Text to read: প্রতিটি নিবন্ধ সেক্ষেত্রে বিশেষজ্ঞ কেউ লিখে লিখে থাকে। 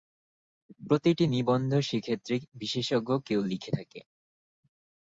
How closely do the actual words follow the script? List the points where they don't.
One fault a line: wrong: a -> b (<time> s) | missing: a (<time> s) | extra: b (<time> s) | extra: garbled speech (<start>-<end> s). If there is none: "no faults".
missing: লিখে (3.7 s)